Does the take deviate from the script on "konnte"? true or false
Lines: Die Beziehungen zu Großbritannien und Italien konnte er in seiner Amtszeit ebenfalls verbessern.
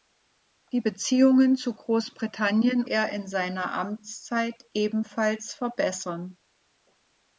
true